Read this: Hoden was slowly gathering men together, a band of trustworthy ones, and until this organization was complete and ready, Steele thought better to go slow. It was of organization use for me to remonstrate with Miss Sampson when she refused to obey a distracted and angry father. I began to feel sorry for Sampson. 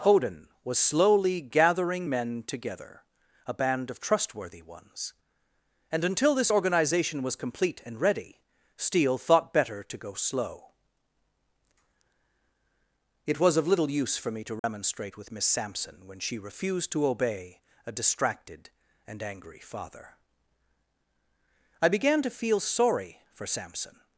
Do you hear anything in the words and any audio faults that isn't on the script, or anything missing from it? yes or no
yes